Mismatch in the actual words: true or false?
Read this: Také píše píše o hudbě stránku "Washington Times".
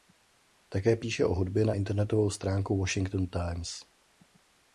true